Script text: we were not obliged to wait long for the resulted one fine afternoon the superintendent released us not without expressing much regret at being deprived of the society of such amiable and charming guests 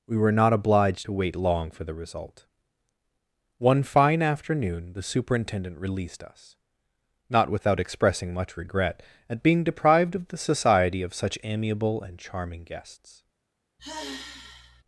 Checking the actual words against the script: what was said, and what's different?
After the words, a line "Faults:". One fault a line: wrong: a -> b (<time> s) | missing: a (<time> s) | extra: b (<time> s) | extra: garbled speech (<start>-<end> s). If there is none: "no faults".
we were not obliged to wait long for the result one fine afternoon the superintendent released us not without expressing much regret at being deprived of the society of such amiable and charming guests
Faults:
wrong: resulted -> result (1.9 s)